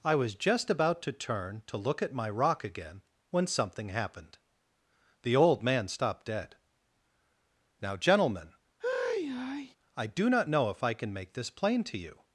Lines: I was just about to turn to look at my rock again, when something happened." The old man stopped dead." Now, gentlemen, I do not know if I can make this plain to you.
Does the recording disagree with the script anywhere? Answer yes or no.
no